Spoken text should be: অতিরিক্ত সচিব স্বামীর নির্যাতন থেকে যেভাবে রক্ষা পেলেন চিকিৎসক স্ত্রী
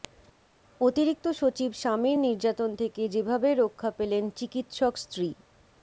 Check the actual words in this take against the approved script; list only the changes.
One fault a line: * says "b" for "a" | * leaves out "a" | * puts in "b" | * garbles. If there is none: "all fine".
all fine